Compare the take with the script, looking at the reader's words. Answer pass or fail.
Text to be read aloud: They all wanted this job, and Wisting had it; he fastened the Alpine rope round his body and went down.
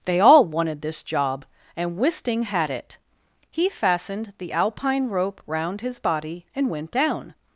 pass